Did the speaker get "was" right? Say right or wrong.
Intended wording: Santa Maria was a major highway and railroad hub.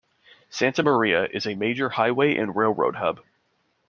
wrong